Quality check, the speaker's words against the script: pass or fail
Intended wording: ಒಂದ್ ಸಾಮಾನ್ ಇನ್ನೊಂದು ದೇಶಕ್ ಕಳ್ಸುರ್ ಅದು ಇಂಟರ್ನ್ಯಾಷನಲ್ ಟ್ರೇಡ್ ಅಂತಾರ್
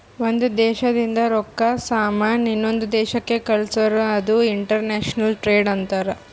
fail